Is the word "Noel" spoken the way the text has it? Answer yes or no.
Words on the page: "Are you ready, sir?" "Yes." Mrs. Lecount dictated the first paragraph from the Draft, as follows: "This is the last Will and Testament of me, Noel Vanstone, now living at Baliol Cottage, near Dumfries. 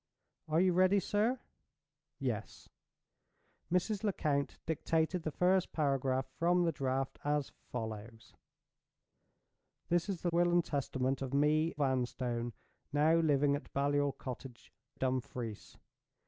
no